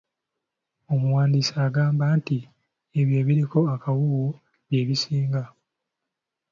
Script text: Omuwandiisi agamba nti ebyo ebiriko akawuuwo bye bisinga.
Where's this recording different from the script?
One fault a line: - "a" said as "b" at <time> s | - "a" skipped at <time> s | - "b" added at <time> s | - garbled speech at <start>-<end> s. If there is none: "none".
none